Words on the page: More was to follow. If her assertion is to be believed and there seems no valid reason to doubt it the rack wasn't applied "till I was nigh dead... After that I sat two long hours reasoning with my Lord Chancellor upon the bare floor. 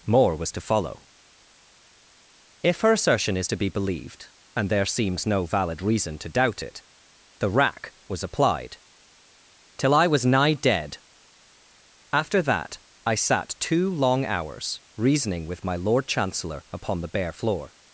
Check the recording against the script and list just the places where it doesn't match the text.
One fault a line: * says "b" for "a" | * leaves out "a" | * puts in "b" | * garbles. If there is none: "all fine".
* says "was" for "wasn't"